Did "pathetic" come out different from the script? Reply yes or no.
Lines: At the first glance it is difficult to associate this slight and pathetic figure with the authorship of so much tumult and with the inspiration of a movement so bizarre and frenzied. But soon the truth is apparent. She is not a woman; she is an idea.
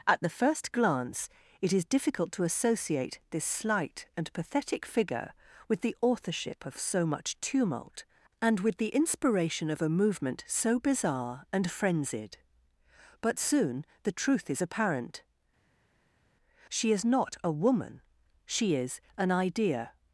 no